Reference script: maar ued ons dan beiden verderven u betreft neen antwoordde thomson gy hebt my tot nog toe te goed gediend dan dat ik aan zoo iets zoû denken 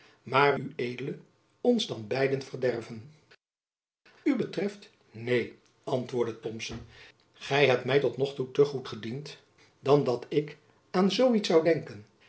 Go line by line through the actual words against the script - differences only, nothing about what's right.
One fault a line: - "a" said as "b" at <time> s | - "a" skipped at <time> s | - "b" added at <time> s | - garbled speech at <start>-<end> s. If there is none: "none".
none